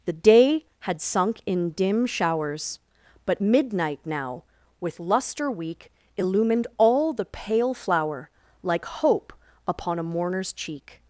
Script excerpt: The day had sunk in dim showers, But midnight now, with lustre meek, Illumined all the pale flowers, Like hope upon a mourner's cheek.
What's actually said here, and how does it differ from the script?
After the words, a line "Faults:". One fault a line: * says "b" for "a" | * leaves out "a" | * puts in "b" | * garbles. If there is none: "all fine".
The day had sunk in dim showers, But midnight now, with lustre weak, Illumined all the pale flower, Like hope upon a mourner's cheek.
Faults:
* says "weak" for "meek"
* says "flower" for "flowers"